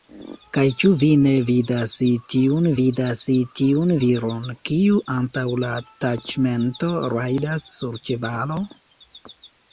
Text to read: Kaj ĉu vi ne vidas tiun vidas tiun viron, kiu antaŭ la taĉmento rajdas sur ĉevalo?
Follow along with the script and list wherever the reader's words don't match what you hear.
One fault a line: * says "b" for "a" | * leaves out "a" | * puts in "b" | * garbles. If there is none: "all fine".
all fine